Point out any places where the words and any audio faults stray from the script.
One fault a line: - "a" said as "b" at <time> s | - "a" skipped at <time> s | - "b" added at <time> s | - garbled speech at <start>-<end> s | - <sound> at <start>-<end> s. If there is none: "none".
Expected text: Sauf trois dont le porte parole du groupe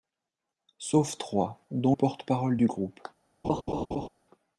- "le" skipped at 1.9 s
- laugh at 3.4-4.1 s